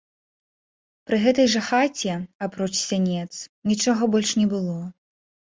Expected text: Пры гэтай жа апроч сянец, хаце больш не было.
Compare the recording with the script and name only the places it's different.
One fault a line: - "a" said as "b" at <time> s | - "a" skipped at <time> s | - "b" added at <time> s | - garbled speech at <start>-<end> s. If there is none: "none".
- "хаце" added at 1.7 s
- "хаце" said as "нічога" at 3.7 s